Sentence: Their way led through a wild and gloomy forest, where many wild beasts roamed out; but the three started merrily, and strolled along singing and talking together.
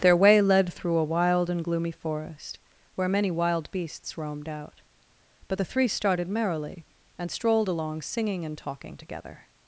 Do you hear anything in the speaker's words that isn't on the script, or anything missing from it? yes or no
no